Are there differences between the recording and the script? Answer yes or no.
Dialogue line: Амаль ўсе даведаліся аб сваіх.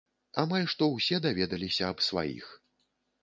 yes